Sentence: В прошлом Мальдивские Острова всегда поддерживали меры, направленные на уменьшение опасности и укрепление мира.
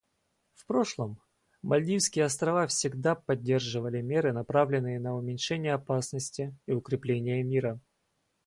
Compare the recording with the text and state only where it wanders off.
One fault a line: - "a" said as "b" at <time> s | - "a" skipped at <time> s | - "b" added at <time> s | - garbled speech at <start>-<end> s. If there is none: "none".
none